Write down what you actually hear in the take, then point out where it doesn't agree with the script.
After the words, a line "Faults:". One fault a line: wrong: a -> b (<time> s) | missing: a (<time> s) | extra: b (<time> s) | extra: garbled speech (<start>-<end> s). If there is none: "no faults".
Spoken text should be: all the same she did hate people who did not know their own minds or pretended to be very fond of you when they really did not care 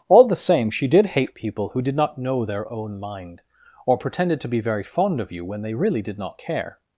all the same she did hate people who did not know their own mind or pretended to be very fond of you when they really did not care
Faults:
wrong: minds -> mind (3.0 s)